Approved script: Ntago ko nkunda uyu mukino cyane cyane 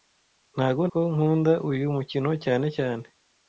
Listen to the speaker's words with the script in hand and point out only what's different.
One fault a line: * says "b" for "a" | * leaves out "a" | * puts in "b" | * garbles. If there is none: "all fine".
all fine